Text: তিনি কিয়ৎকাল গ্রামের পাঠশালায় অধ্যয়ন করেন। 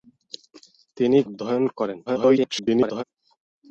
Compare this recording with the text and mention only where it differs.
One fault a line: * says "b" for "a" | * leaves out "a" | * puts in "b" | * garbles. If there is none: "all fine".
* leaves out "কিয়ৎকাল গ্রামের পাঠশালায়"
* garbles